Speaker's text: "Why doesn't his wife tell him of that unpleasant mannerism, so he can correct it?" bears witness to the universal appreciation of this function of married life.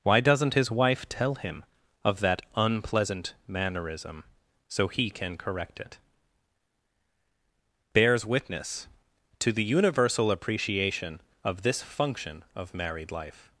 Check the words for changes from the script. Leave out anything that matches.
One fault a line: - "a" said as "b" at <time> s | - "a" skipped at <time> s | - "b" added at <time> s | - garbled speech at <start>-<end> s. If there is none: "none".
none